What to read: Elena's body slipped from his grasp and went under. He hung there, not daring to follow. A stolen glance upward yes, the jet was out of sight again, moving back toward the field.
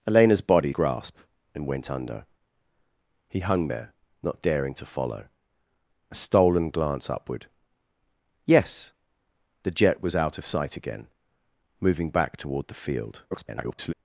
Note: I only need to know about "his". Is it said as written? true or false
false